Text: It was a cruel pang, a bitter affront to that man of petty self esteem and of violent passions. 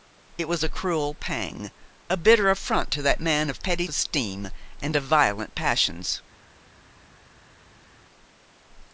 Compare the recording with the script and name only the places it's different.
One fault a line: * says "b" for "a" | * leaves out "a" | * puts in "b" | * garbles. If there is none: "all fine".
* leaves out "self"